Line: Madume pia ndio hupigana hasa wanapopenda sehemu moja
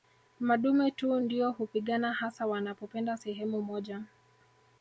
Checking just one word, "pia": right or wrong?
wrong